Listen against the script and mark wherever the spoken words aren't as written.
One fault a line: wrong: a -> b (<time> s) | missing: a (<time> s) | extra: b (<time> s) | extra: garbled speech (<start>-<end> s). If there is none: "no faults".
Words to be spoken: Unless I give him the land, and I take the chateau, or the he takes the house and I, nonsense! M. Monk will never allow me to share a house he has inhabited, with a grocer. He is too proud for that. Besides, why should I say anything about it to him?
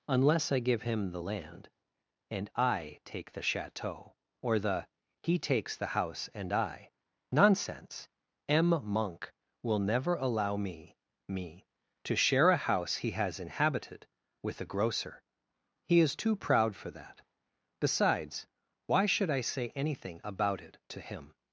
extra: me (11.3 s)